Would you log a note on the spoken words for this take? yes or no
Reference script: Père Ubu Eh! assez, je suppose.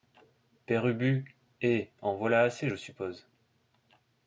yes